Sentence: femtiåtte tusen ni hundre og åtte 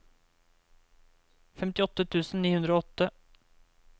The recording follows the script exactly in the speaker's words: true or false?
true